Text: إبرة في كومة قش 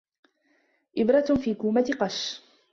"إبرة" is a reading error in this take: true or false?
false